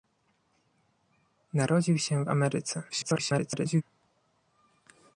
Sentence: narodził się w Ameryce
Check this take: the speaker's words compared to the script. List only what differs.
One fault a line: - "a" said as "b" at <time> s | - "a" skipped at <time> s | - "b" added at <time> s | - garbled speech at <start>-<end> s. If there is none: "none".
- garbled speech at 2.9-3.8 s